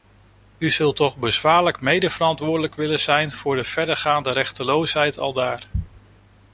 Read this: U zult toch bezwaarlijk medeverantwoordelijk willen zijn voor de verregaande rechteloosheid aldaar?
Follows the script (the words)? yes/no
yes